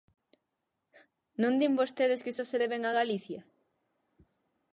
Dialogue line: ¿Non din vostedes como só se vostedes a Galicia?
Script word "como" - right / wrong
wrong